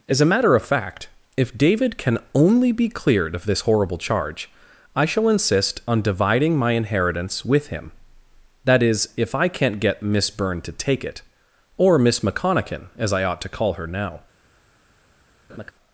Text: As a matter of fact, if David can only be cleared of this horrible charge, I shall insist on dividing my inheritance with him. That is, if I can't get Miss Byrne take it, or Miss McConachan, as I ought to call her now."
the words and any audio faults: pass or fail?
fail